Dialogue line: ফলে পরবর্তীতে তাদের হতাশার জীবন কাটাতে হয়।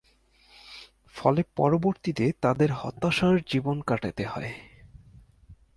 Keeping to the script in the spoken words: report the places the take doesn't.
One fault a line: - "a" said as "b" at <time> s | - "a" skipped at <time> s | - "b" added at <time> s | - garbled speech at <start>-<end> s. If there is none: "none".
none